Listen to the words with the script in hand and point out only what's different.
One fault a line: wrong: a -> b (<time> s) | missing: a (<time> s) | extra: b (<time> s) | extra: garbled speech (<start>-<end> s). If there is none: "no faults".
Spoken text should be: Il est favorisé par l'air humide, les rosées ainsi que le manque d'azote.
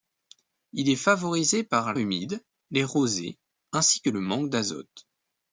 missing: l'air (1.9 s)